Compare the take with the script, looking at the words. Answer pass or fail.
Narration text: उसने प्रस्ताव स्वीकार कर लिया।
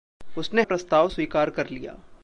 pass